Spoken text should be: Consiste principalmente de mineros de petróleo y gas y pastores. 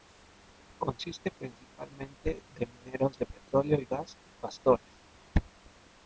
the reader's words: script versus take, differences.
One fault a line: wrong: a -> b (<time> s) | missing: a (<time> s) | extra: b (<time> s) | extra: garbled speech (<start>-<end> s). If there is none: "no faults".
no faults